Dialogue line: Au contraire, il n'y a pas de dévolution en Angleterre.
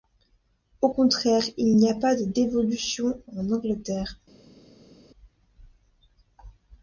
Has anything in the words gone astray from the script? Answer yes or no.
no